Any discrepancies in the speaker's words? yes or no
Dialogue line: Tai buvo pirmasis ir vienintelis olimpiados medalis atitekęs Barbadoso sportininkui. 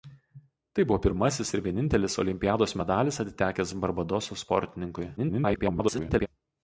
yes